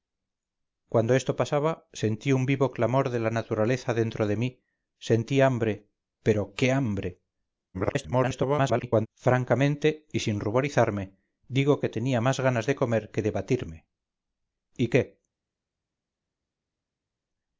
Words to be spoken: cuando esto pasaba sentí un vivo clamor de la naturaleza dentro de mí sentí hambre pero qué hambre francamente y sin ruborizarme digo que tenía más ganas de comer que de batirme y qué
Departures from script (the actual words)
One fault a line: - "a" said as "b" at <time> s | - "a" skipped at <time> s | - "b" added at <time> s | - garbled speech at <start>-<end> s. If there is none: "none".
- garbled speech at 7.7-9.1 s